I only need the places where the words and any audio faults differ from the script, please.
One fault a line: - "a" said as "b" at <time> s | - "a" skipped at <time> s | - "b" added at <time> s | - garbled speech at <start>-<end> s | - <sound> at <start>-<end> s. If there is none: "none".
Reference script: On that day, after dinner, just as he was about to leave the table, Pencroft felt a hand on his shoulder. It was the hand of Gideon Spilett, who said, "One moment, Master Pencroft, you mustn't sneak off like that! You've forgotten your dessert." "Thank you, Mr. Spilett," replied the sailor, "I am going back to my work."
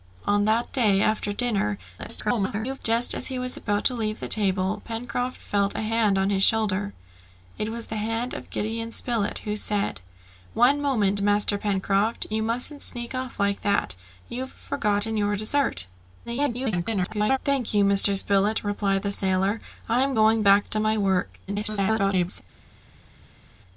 - garbled speech at 2.0-2.8 s
- garbled speech at 16.2-17.4 s
- garbled speech at 21.5-22.4 s